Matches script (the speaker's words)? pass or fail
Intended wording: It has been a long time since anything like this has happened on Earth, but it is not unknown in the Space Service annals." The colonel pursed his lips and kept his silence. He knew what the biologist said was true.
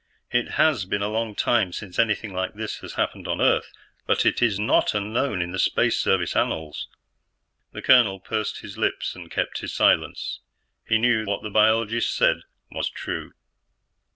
pass